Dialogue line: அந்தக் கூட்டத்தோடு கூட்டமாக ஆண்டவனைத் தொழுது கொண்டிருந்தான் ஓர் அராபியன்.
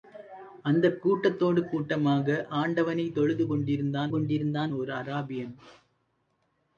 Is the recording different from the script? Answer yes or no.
yes